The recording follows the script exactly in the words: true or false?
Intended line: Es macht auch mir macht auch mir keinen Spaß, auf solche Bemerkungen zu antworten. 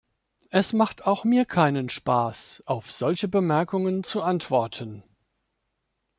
false